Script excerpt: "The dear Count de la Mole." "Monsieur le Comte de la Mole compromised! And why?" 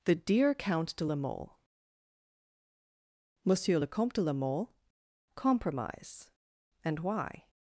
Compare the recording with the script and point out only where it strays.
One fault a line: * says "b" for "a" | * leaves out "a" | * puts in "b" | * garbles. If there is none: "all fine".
* says "compromise" for "compromised"